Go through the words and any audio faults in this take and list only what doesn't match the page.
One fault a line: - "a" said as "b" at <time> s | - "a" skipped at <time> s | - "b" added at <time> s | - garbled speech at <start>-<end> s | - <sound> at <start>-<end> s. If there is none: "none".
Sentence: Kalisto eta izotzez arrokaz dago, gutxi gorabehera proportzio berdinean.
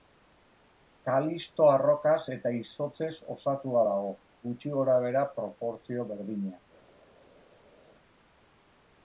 - "arrokaz" added at 1.7 s
- "arrokaz" said as "osatua" at 3.3 s